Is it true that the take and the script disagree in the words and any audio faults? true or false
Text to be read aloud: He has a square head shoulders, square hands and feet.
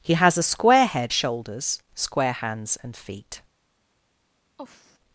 true